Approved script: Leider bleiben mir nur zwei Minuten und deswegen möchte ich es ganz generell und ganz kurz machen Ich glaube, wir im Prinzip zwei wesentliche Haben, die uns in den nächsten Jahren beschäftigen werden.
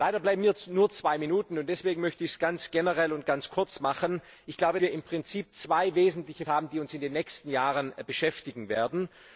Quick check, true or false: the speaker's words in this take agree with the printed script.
true